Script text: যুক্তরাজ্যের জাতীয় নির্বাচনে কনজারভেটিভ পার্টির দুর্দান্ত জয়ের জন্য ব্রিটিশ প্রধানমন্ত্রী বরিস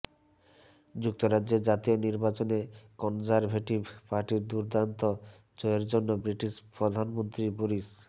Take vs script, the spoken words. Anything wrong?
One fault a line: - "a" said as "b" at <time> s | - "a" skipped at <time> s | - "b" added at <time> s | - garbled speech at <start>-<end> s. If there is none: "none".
none